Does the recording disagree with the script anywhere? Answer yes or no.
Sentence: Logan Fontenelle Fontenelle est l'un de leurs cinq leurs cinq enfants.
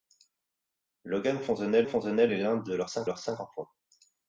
no